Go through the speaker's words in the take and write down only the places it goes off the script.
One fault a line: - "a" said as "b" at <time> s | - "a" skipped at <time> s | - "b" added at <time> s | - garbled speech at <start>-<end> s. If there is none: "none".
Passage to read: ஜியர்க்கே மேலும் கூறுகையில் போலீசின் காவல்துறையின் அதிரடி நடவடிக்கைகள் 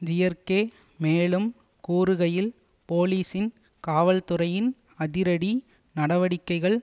none